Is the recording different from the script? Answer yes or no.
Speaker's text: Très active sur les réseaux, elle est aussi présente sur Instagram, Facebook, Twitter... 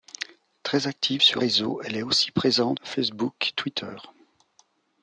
yes